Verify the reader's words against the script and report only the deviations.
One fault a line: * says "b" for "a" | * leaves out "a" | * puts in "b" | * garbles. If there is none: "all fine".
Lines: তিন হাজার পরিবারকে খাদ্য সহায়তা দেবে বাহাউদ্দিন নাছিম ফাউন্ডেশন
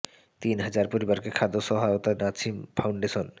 * leaves out "দেবে বাহাউদ্দিন"